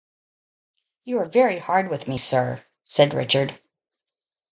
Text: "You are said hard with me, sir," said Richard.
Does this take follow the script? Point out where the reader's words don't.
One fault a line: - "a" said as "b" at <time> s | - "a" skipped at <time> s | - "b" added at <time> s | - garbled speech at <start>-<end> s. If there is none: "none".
- "said" said as "very" at 1.2 s